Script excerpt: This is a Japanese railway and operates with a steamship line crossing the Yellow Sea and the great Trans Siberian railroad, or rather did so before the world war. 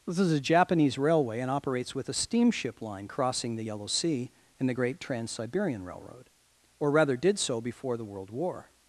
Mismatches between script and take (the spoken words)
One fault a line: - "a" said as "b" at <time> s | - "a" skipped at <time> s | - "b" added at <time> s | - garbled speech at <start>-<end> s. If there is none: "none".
none